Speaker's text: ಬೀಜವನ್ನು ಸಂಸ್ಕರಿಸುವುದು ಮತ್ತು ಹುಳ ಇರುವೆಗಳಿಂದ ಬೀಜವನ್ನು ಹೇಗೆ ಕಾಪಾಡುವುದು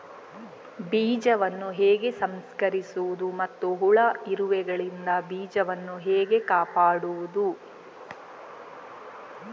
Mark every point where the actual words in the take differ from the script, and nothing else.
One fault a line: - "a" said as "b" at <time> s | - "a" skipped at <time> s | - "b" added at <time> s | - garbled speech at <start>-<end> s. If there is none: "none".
- "ಹೇಗೆ" added at 1.7 s